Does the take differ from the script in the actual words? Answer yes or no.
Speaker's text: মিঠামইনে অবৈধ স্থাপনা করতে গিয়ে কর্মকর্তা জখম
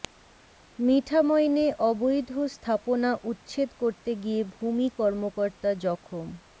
yes